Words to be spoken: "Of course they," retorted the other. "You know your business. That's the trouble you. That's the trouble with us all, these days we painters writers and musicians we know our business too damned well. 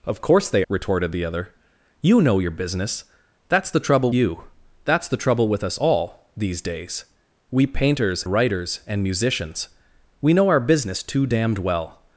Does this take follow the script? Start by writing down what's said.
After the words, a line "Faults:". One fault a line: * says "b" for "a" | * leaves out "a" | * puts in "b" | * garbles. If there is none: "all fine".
"Of course they," retorted the other. "You know your business. That's the trouble you. That's the trouble with us all, these days we painters writers and musicians we know our business too damned well.
Faults:
all fine